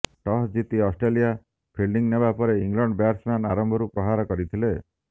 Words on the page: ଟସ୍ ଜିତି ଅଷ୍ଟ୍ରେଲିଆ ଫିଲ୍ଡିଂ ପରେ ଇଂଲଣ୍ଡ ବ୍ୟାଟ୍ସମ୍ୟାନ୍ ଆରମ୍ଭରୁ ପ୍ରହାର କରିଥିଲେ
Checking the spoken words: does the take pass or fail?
fail